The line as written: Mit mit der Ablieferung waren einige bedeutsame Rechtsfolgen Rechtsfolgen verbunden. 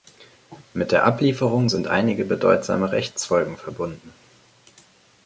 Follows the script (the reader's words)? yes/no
no